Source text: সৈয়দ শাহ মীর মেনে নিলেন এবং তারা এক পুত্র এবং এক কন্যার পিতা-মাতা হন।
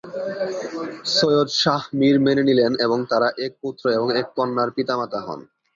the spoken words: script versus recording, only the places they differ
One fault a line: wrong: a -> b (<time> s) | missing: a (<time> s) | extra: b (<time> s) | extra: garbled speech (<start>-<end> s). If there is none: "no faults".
no faults